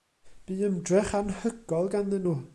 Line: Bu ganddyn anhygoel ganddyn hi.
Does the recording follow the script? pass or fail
fail